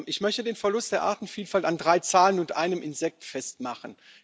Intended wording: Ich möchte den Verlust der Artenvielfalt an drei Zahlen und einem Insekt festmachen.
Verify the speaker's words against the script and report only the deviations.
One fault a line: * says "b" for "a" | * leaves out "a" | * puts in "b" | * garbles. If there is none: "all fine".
all fine